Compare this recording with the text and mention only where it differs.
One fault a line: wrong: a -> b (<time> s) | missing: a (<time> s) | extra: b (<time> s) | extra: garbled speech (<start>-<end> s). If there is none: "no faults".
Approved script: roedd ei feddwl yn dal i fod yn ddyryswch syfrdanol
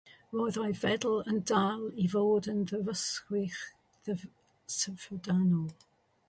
no faults